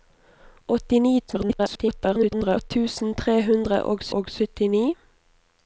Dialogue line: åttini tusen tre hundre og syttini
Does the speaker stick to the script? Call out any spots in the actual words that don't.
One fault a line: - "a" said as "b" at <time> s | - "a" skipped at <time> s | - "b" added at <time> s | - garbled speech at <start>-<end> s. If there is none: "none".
- garbled speech at 1.3-2.7 s
- "og" added at 4.2 s